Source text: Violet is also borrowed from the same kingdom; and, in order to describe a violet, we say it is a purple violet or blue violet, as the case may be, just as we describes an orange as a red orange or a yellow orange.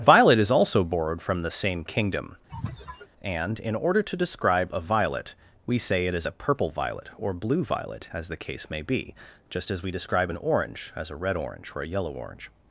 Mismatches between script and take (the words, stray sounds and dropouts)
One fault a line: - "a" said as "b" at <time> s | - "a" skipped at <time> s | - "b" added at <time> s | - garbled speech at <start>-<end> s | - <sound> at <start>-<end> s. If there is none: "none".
- sneeze at 2.5-3.1 s
- "describes" said as "describe" at 9.9 s